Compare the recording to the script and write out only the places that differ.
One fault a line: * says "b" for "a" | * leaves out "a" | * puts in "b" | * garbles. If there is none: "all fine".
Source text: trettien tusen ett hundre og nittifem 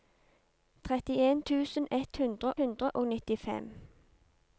* puts in "hundre"